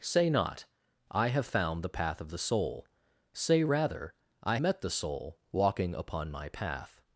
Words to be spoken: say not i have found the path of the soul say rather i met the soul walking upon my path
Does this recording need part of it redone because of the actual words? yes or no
no